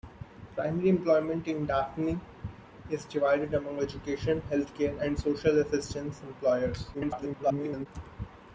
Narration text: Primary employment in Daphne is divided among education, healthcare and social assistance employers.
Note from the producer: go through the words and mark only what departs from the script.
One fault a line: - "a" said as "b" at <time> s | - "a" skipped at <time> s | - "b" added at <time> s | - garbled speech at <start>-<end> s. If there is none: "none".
- garbled speech at 6.9-7.9 s